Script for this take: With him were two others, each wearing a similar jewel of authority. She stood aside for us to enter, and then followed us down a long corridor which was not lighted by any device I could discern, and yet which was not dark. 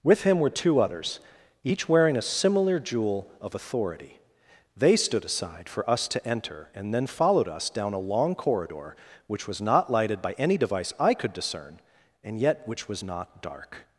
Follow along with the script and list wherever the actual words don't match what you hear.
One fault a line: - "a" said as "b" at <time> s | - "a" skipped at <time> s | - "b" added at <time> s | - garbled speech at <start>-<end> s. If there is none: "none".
- "She" said as "They" at 4.8 s